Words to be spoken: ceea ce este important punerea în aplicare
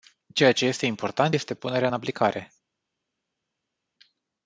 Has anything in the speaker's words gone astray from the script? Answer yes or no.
yes